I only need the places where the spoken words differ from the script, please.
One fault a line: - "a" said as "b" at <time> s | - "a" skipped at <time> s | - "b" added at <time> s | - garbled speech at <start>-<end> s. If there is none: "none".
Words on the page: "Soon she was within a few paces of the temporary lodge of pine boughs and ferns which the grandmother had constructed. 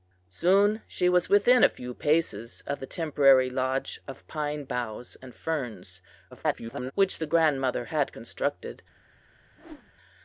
- garbled speech at 6.3-6.9 s